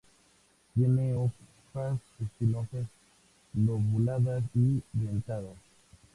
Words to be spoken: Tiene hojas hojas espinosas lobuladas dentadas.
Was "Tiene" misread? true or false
false